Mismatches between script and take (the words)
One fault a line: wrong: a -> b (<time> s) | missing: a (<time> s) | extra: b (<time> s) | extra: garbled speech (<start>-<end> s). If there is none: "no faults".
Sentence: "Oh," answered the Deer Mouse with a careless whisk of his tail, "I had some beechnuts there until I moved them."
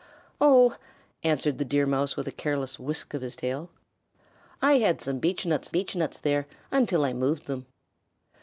extra: beechnuts (5.7 s)